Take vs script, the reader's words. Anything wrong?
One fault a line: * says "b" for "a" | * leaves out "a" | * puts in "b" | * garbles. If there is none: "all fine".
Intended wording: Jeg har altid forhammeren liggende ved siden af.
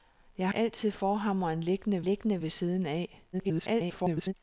* leaves out "har"
* puts in "liggende"
* garbles